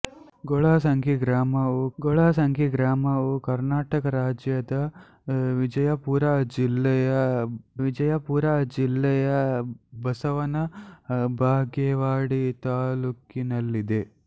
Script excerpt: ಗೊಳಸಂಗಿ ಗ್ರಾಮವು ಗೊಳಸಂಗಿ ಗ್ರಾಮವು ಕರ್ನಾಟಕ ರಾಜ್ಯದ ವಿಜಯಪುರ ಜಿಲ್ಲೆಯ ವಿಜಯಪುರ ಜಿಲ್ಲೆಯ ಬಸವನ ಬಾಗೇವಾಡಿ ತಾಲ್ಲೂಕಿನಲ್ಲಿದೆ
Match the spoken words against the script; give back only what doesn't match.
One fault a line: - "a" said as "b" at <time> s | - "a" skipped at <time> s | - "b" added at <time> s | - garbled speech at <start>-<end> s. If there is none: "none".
none